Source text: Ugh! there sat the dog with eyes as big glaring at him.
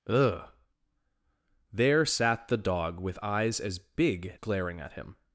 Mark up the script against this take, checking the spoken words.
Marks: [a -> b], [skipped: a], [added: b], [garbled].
Ugh! there sat the dog with eyes as big glaring at him.